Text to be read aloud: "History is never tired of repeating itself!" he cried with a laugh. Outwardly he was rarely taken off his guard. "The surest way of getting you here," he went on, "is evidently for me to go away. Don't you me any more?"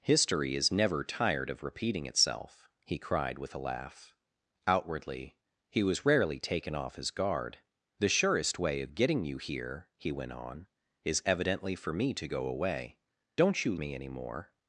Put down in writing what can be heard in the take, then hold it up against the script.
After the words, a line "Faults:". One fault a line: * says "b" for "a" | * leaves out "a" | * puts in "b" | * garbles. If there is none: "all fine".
"History is never tired of repeating itself!" he cried with a laugh. Outwardly he was rarely taken off his guard. "The surest way of getting you here," he went on, "is evidently for me to go away. Don't you me any more?"
Faults:
all fine